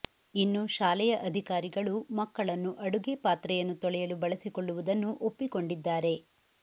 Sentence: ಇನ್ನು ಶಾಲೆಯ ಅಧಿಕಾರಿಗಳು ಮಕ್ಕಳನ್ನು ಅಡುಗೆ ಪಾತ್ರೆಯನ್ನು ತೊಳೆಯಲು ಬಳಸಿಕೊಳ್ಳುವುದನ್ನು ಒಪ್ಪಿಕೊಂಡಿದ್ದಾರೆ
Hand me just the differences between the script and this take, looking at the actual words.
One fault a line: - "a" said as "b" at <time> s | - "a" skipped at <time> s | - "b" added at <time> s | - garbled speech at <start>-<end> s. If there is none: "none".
none